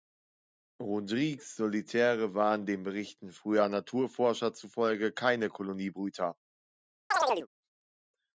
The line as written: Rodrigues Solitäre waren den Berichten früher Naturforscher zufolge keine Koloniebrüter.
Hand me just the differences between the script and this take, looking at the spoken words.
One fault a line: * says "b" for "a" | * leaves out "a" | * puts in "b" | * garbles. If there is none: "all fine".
all fine